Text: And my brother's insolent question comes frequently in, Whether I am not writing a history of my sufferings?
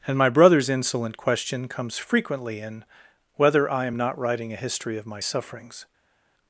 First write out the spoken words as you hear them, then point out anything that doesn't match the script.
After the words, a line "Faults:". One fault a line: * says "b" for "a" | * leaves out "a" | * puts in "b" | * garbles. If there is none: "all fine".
And my brother's insolent question comes frequently in, Whether I am not writing a history of my sufferings?
Faults:
all fine